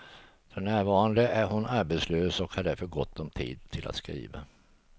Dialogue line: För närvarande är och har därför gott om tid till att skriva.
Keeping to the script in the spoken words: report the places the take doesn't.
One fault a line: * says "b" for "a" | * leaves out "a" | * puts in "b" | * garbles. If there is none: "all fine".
* puts in "hon arbetslös"